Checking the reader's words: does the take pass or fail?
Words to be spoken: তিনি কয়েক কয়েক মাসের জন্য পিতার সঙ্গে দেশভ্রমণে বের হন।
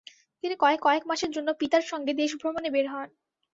pass